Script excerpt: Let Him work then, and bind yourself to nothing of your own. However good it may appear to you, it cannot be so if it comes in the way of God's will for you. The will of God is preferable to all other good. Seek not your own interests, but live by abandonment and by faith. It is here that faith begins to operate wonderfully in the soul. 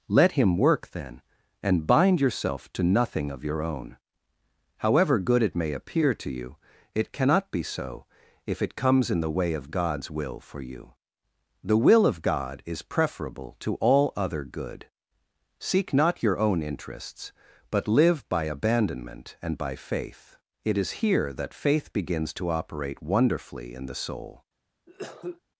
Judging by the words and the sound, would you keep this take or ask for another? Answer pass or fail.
fail